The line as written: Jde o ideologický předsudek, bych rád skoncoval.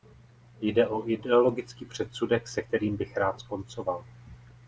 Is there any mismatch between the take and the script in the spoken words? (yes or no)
yes